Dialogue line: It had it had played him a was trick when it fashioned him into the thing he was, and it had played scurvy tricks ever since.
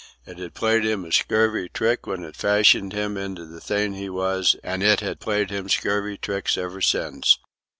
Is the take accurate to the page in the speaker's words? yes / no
no